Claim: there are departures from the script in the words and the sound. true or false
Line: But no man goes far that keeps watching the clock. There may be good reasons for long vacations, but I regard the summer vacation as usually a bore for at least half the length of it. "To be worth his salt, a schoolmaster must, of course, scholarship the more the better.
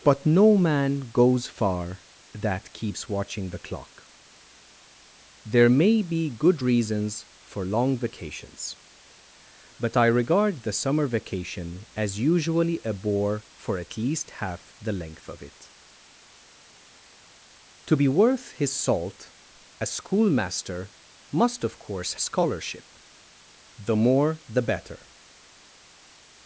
false